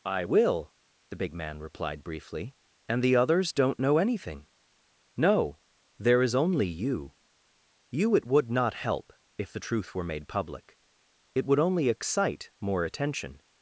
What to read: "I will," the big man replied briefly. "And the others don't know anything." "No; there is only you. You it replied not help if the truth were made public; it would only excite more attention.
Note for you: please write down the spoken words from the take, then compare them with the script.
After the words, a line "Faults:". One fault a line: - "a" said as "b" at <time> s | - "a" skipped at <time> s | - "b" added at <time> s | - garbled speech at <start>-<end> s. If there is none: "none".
"I will," the big man replied briefly. "And the others don't know anything." "No; there is only you. You it would not help if the truth were made public; it would only excite more attention.
Faults:
- "replied" said as "would" at 8.2 s